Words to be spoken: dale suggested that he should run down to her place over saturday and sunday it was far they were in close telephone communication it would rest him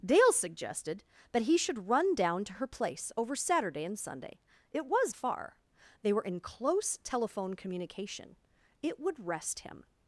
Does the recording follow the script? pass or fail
pass